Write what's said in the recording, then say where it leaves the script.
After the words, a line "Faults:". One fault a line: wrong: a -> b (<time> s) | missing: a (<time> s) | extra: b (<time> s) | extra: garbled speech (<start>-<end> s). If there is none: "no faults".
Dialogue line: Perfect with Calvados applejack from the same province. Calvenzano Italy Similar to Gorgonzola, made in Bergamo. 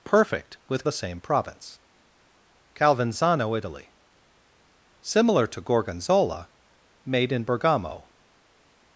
Perfect with The same province. Calvenzano Italy Similar to Gorgonzola, made in Bergamo.
Faults:
missing: Calvados applejack from (0.8 s)